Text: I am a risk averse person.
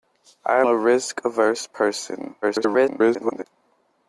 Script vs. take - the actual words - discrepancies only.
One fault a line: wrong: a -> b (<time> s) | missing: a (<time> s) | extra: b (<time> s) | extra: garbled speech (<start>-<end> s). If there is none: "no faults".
missing: am (0.6 s)
extra: garbled speech (2.4-3.4 s)